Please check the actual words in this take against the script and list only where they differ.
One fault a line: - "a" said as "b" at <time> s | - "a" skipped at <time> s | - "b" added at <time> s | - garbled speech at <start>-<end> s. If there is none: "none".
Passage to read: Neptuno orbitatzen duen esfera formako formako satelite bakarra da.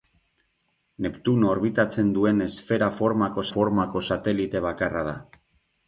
none